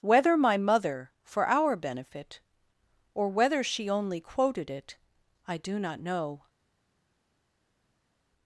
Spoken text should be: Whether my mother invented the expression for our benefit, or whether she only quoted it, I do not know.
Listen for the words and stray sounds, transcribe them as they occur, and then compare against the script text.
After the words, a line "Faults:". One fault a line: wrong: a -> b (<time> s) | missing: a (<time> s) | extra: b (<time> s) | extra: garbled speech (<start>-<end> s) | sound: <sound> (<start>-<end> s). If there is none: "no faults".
Whether my mother for our benefit, or whether she only quoted it, I do not know.
Faults:
missing: invented the expression (1.1 s)